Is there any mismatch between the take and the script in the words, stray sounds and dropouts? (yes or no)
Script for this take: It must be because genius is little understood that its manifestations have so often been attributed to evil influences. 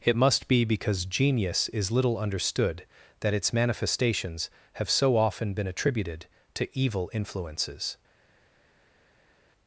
no